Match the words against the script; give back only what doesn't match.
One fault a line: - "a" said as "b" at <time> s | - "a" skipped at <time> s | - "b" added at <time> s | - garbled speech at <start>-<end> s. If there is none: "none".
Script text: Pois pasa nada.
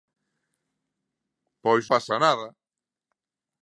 none